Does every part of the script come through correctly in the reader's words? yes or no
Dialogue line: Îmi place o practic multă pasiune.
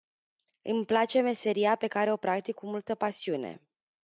no